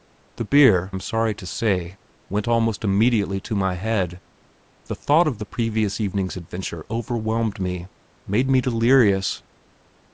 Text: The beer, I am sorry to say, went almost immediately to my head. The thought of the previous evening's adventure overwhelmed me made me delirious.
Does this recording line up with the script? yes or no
no